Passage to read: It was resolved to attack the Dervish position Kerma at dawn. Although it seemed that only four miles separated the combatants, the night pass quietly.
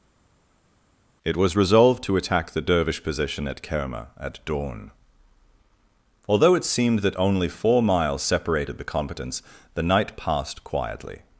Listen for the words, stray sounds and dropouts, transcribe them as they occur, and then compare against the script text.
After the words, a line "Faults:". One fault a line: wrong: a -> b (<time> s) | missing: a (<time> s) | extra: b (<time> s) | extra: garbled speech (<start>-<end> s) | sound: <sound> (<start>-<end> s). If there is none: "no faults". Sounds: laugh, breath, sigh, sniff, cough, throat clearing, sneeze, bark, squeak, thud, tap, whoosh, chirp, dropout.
It was resolved to attack the Dervish position at Kerma at dawn. Although it seemed that only four miles separated the combatants, the night passed quietly.
Faults:
extra: at (3.5 s)
wrong: pass -> passed (10.2 s)